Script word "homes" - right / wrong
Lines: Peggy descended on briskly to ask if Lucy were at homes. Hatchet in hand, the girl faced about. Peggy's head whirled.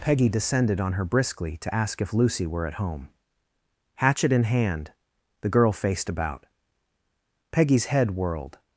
wrong